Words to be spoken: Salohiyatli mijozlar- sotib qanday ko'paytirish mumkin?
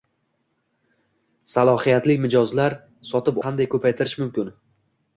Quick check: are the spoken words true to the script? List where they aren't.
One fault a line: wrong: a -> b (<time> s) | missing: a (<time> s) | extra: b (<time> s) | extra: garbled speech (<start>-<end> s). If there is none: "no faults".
no faults